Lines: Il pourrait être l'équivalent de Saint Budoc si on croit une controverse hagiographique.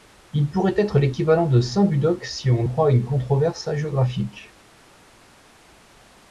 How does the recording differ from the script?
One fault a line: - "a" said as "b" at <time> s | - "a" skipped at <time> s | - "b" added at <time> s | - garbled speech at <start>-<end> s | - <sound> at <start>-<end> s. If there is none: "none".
none